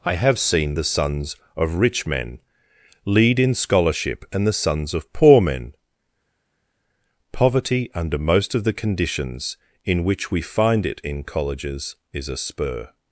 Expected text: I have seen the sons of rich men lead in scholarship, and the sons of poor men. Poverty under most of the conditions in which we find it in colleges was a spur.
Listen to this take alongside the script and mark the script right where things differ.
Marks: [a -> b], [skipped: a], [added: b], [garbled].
I have seen the sons of rich men lead in scholarship, and the sons of poor men. Poverty under most of the conditions in which we find it in colleges [was -> is] a spur.